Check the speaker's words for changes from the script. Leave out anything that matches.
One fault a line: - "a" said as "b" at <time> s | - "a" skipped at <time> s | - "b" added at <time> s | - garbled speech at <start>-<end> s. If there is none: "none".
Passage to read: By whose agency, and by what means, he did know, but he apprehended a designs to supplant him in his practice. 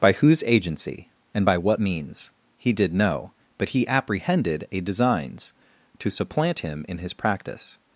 none